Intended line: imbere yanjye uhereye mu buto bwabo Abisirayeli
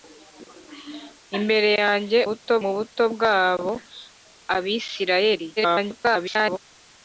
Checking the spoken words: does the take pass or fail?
fail